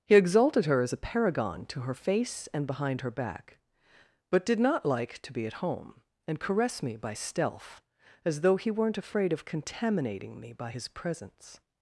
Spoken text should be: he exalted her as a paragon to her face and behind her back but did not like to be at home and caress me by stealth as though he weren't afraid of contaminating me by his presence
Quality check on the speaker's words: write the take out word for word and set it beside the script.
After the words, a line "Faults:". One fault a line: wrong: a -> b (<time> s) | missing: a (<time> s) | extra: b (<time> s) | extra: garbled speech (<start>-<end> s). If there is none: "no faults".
he exalted her as a paragon to her face and behind her back but did not like to be at home and caress me by stealth as though he weren't afraid of contaminating me by his presence
Faults:
no faults